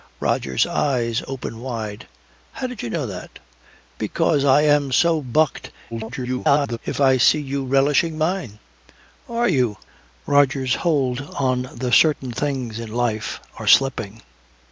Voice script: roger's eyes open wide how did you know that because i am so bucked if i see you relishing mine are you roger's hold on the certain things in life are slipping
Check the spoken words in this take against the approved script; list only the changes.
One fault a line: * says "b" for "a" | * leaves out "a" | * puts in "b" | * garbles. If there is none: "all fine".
* garbles